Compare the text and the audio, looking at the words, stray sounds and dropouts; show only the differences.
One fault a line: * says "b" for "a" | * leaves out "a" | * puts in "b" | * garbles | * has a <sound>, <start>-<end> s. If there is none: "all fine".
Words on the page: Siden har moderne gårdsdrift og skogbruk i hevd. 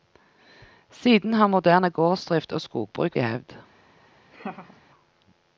* has a laugh, 4.3-4.8 s